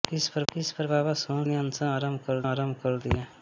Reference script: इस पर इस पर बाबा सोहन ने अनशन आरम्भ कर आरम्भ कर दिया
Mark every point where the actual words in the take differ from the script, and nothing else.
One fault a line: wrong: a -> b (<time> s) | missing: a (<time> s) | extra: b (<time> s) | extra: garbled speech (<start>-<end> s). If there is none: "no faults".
no faults